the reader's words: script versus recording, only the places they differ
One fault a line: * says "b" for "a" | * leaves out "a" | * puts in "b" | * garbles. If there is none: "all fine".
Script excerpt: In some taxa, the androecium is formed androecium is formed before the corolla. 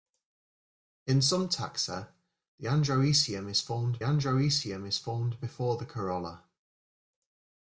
all fine